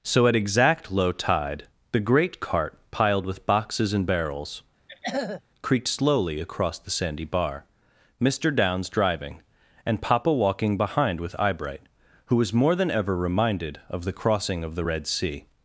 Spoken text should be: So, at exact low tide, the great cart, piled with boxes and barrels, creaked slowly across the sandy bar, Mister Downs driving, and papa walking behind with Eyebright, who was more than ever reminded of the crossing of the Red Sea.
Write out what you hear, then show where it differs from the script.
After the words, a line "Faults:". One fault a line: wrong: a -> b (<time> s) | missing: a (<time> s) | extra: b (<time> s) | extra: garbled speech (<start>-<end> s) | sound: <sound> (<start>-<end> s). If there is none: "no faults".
So, at exact low tide, the great cart, piled with boxes and barrels, creaked slowly across the sandy bar, Mister Downs driving, and papa walking behind with Eyebright, who was more than ever reminded of the crossing of the Red Sea.
Faults:
sound: throat clearing (4.9-5.4 s)